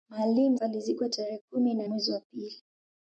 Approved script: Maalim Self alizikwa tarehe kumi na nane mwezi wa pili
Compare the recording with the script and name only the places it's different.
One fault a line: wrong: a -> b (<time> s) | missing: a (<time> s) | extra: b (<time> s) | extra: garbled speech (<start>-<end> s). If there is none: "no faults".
missing: Self (0.6 s)
missing: nane (1.9 s)